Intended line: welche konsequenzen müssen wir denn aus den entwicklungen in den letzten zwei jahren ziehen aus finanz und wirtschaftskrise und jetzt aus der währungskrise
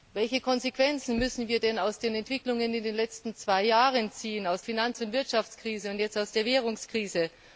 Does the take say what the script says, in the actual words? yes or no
yes